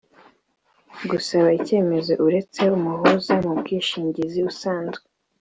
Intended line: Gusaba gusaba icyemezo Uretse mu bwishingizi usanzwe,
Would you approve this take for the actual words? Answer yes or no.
no